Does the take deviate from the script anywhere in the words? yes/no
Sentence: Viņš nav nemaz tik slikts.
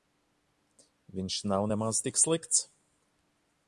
no